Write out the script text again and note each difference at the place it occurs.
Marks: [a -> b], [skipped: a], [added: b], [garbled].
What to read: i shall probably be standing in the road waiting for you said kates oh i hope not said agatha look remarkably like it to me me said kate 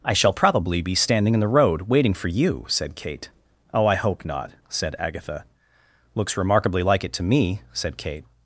i shall probably be standing in the road waiting for you said [kates -> kate] oh i hope not said agatha [look -> looks] remarkably like it to me [skipped: me] said kate